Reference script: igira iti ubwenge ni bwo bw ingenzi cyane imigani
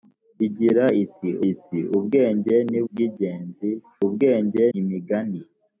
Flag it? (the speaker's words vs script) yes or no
yes